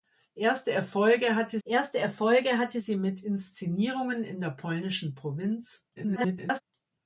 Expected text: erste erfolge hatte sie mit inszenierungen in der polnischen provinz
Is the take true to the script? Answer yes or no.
no